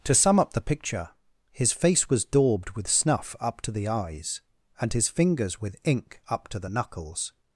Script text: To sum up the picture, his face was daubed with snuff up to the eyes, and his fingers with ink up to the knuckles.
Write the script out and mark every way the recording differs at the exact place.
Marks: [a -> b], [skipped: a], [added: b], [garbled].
To sum up the picture, his face was daubed with snuff up to the eyes, and his fingers with ink up to the knuckles.